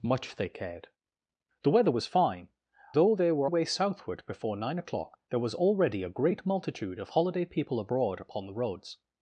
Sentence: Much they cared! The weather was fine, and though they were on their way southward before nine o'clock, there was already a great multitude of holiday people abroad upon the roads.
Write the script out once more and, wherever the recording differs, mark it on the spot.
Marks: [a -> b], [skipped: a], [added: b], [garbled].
Much they cared! The weather was fine, [skipped: and] though they were [skipped: on their] way southward before nine o'clock, there was already a great multitude of holiday people abroad upon the roads.